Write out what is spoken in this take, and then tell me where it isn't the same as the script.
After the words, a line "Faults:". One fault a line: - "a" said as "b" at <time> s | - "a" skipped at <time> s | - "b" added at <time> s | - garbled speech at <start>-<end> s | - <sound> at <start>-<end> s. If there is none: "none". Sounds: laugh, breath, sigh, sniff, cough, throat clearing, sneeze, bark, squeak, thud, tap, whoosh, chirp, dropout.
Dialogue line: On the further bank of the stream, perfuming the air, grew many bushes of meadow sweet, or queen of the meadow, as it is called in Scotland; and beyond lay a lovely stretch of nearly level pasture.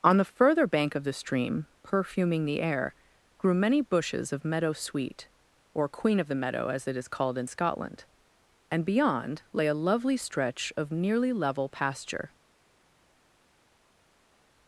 On the further bank of the stream, perfuming the air, grew many bushes of meadow sweet, or queen of the meadow, as it is called in Scotland; and beyond lay a lovely stretch of nearly level pasture.
Faults:
none